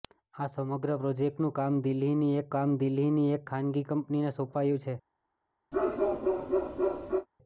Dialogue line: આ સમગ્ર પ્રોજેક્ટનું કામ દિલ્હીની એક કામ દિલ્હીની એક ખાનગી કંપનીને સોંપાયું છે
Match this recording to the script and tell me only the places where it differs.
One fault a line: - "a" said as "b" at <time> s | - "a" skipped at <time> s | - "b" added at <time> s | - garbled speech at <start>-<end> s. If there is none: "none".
none